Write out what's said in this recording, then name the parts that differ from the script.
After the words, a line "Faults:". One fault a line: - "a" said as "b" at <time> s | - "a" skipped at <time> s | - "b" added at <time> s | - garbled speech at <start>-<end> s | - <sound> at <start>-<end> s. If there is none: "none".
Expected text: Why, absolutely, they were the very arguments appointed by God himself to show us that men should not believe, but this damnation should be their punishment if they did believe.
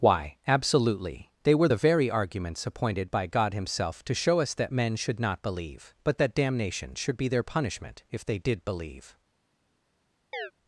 Why, absolutely, they were the very arguments appointed by God himself to show us that men should not believe, but that damnation should be their punishment if they did believe.
Faults:
- "this" said as "that" at 6.2 s
- chirp at 10.3-10.5 s